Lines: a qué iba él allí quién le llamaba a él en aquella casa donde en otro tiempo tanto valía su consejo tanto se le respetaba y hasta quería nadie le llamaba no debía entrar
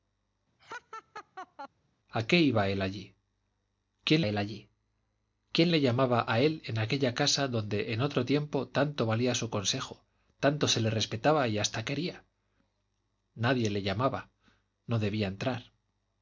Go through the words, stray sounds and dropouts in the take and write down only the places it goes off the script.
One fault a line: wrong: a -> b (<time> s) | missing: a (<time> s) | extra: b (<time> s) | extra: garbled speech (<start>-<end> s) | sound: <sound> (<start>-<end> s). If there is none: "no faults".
sound: laugh (0.6-1.7 s)
extra: él allí quién (4.2 s)